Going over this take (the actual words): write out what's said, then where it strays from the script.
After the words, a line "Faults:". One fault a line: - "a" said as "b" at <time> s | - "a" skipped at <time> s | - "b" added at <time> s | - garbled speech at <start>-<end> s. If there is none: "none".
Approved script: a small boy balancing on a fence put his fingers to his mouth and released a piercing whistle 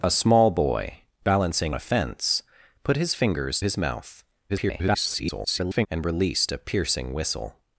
a small boy balancing a fence put his fingers his mouth [garbled] and released a piercing whistle
Faults:
- "on" skipped at 1.8 s
- "to" skipped at 3.6 s
- garbled speech at 4.5-5.9 s